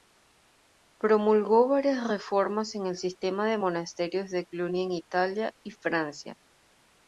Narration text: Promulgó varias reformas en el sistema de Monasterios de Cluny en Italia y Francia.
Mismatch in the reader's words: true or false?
false